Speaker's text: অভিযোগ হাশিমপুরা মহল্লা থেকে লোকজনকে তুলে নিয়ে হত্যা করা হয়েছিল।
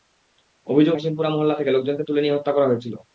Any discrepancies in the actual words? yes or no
no